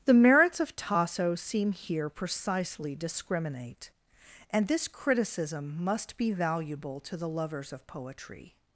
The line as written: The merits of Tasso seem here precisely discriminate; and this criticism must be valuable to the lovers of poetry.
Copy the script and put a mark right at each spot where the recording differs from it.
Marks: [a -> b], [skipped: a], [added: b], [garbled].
The merits of Tasso seem here precisely discriminate; and this criticism must be valuable to the lovers of poetry.